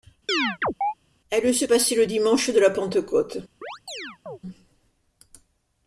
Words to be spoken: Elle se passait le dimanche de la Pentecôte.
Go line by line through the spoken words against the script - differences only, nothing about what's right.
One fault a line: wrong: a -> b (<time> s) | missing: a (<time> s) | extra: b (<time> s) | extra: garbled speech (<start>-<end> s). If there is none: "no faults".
no faults